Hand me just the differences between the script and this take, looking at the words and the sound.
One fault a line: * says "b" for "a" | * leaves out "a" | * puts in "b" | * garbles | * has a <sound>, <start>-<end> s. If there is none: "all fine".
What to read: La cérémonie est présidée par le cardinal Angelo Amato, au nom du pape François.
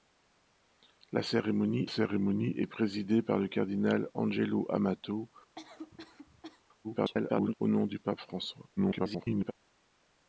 * puts in "cérémonie"
* has a cough, 5.6-6.6 s
* garbles
* garbles